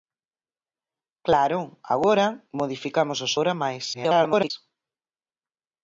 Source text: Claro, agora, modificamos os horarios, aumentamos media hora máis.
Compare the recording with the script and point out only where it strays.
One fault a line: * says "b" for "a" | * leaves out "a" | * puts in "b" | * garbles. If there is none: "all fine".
* leaves out "horarios aumentamos media"
* garbles